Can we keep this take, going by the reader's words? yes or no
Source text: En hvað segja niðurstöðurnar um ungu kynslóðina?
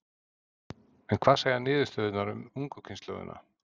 yes